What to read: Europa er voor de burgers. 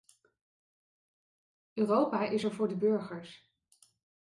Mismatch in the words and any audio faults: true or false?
true